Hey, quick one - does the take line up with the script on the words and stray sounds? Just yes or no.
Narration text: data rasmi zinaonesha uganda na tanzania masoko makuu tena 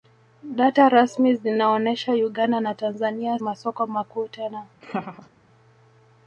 no